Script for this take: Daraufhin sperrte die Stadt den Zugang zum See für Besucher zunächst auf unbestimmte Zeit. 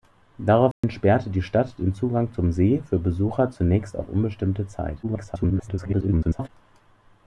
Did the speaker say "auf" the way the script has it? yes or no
yes